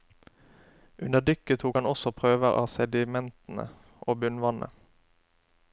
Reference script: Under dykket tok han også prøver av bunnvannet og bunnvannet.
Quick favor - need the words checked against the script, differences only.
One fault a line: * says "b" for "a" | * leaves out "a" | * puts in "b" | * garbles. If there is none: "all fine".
* says "sedimentene" for "bunnvannet"